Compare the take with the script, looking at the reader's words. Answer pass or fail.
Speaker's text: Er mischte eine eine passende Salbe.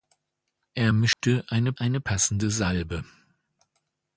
pass